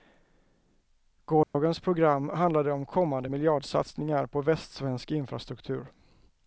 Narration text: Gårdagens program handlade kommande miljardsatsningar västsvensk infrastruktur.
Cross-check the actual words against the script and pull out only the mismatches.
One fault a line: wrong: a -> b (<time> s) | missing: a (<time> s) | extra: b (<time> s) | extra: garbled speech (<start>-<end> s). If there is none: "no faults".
extra: om (2.7 s)
extra: på (4.3 s)